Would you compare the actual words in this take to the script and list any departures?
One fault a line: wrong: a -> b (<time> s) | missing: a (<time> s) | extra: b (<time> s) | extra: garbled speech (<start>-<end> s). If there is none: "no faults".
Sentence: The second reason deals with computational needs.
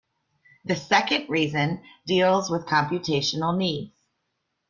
no faults